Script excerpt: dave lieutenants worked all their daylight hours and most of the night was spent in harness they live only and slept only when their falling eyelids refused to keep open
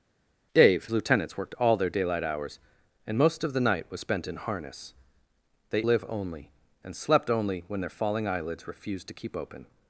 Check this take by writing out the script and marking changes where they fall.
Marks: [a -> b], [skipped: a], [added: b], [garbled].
dave lieutenants worked all their daylight hours and most of the night was spent in harness they live only and slept only when their falling eyelids refused to keep open